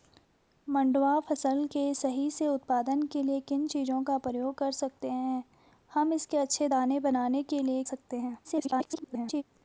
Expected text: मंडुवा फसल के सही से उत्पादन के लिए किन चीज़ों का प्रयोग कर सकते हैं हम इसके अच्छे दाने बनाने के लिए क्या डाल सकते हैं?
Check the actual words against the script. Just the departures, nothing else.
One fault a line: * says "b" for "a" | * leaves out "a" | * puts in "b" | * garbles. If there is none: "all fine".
* leaves out "क्या डाल"
* garbles